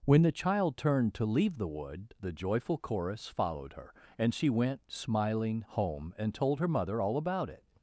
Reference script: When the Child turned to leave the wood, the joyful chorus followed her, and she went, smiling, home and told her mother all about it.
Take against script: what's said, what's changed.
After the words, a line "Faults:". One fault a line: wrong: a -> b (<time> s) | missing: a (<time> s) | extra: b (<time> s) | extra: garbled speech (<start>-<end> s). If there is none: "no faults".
When the Child turned to leave the wood, the joyful chorus followed her, and she went, smiling, home and told her mother all about it.
Faults:
no faults